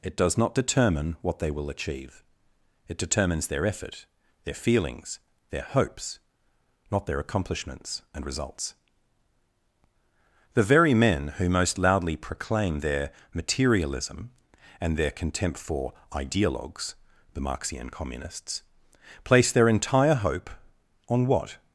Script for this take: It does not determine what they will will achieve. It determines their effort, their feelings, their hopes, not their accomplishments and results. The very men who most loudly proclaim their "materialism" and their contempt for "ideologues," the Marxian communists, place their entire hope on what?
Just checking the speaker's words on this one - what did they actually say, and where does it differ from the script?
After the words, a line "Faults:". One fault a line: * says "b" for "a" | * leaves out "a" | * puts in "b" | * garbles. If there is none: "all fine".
It does not determine what they will achieve. It determines their effort, their feelings, their hopes, not their accomplishments and results. The very men who most loudly proclaim their "materialism" and their contempt for "ideologues," the Marxian communists, place their entire hope on what?
Faults:
* leaves out "will"